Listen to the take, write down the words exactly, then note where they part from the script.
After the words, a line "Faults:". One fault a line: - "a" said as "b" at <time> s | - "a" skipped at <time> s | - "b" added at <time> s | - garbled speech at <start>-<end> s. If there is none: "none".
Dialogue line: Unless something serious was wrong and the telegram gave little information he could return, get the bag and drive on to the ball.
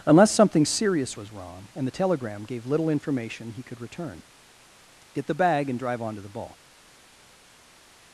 Unless something serious was wrong and the telegram gave little information he could return, get the bag and drive on to the ball.
Faults:
none